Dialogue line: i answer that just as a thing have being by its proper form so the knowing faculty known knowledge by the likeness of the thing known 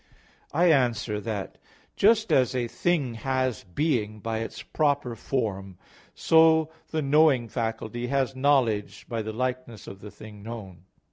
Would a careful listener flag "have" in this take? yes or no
yes